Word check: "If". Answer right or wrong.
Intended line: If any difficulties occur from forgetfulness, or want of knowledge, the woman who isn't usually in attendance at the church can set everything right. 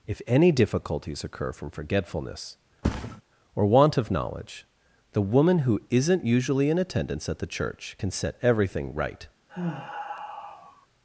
right